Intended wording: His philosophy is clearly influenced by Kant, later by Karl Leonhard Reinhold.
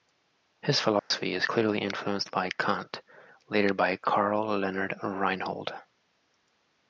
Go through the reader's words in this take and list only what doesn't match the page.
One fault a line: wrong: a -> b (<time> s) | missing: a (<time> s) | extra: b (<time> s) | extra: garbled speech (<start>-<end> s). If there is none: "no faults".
no faults